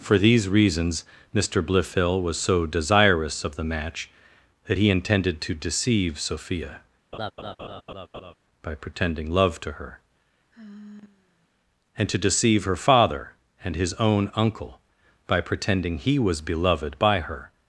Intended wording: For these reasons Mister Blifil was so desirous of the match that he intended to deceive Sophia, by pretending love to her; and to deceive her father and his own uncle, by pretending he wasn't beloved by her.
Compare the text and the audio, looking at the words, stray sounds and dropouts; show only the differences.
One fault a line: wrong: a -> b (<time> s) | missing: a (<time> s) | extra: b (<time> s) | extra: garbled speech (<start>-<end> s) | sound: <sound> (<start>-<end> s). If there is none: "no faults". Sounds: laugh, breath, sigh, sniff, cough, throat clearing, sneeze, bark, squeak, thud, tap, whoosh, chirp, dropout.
sound: laugh (7.1-8.4 s)
sound: sigh (10.5-11.5 s)
wrong: wasn't -> was (16.2 s)